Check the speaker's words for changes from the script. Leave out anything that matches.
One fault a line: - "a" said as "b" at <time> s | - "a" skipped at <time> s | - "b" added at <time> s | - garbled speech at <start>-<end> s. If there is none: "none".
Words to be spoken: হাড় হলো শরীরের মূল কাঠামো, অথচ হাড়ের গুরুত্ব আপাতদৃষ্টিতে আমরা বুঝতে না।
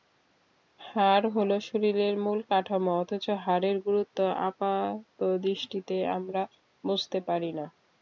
- "পারি" added at 7.3 s